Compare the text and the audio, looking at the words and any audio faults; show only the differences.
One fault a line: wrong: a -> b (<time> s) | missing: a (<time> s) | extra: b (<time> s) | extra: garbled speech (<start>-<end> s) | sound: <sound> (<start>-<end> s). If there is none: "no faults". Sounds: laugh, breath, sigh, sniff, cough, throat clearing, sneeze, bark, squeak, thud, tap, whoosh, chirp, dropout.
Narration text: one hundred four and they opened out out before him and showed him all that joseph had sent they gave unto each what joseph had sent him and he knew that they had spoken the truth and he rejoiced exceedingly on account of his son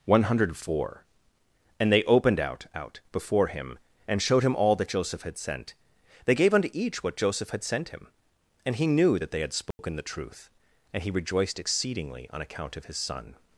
sound: dropout (9.7-9.8 s)